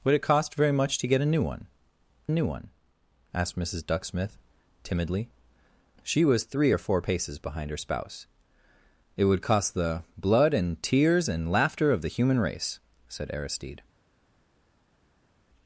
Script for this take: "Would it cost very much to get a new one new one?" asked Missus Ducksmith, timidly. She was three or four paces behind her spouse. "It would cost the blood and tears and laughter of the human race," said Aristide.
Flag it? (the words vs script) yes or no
no